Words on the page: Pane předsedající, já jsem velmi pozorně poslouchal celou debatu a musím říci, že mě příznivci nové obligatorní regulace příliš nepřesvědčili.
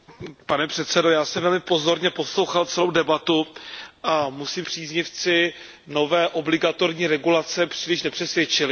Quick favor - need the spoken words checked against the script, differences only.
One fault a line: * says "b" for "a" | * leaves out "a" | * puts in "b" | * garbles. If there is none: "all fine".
* leaves out "říci že mě"